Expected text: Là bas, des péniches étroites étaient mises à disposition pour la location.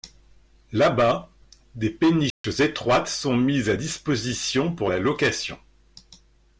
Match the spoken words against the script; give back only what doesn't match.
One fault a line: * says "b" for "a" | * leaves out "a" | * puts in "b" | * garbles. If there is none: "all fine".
* says "sont" for "étaient"